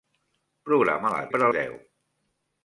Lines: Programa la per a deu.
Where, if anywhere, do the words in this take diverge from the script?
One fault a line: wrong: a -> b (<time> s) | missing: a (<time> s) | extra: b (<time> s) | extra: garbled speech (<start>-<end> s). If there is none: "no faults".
no faults